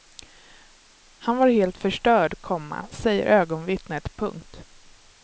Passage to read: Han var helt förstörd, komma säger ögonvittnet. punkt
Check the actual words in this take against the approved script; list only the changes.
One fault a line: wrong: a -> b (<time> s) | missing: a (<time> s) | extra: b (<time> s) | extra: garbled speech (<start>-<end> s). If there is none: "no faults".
no faults